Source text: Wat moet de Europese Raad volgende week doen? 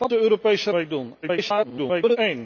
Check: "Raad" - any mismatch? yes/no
yes